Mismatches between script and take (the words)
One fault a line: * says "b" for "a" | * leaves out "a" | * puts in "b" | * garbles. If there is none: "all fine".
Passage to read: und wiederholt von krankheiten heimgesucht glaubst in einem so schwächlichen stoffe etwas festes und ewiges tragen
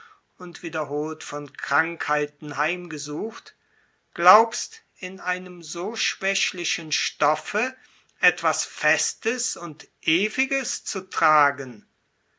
* puts in "zu"